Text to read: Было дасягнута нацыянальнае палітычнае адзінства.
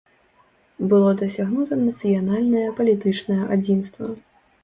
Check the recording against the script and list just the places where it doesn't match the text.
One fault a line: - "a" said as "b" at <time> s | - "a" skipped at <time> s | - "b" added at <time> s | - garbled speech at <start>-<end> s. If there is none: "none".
none